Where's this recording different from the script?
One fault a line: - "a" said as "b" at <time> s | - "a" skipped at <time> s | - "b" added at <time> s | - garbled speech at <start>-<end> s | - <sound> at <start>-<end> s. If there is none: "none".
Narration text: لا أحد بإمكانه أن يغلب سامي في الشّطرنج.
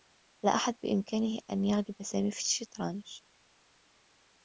none